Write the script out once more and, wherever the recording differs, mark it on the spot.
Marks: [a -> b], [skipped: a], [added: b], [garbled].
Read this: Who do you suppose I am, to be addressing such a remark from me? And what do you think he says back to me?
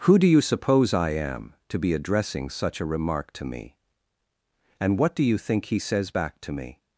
Who do you suppose I am, to be addressing such a remark [from -> to] me? And what do you think he says back to me?